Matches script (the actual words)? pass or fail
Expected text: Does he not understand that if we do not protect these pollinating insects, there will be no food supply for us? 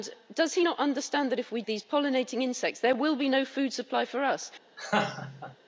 fail